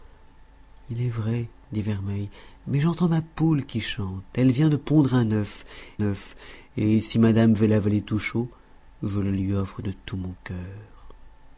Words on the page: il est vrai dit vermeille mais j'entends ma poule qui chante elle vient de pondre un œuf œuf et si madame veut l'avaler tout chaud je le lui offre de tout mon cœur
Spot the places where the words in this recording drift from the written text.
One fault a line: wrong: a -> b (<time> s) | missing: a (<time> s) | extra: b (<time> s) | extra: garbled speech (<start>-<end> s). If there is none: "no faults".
no faults